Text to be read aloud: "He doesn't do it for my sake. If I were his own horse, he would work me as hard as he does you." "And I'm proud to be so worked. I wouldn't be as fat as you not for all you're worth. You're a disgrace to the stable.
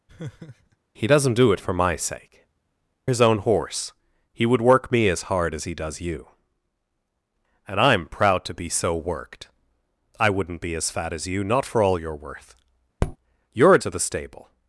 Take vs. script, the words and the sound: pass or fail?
fail